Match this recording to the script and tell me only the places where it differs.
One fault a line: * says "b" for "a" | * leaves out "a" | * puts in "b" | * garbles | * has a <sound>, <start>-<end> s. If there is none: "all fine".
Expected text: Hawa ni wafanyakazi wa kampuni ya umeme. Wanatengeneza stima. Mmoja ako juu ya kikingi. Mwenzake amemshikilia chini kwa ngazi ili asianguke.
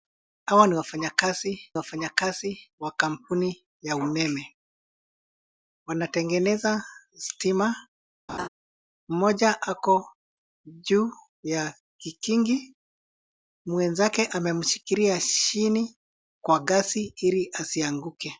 * puts in "wafanyakazi"
* has a laugh, 8.3-8.5 s